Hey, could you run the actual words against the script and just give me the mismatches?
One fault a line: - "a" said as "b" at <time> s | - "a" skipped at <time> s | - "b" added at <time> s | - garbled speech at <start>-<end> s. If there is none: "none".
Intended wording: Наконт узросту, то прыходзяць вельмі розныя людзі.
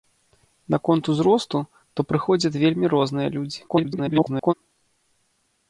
- garbled speech at 3.7-4.5 s